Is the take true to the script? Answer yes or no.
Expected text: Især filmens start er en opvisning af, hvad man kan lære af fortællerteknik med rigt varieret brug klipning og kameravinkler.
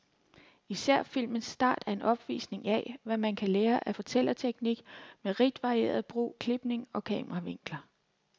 yes